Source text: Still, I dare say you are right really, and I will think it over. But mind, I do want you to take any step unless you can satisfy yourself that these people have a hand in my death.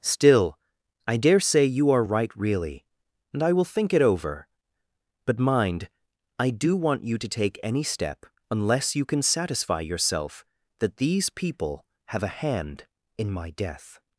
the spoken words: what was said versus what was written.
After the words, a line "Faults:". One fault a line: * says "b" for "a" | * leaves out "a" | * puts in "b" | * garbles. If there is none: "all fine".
Still, I dare say you are right really, and I will think it over. But mind, I do want you to take any step unless you can satisfy yourself that these people have a hand in my death.
Faults:
all fine